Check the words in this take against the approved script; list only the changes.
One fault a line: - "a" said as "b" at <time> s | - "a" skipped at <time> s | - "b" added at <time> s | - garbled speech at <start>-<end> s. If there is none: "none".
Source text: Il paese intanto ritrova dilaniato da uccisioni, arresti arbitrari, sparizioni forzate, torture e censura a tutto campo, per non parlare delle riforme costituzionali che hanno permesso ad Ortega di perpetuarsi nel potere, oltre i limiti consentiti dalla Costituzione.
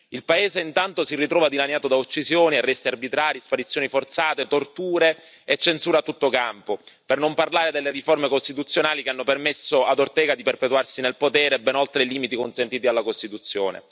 - "si" added at 1.0 s
- "ben" added at 11.6 s